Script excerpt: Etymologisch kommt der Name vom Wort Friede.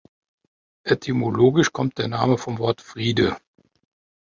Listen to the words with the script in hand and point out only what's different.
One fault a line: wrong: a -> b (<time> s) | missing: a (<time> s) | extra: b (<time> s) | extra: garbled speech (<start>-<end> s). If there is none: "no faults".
no faults